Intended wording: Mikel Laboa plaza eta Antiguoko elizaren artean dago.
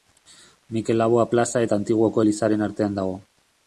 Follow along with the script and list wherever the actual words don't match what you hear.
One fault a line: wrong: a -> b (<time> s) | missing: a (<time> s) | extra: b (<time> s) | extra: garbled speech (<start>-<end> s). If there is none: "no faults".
no faults